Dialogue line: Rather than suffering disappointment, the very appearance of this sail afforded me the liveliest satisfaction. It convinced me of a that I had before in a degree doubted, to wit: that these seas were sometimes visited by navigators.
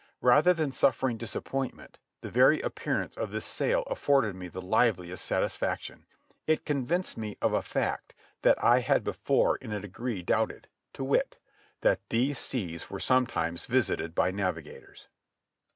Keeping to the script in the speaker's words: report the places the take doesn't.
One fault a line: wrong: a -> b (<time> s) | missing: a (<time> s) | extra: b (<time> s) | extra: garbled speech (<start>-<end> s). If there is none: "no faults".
extra: fact (7.6 s)